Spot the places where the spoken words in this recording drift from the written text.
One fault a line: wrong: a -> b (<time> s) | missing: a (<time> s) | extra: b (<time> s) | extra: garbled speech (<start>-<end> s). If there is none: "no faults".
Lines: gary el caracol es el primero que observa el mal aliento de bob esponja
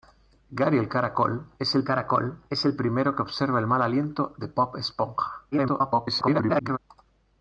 extra: caracol es el (1.8 s)
extra: garbled speech (5.5-6.8 s)